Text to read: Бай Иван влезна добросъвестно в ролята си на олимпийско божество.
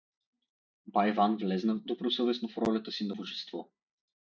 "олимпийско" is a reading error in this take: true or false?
true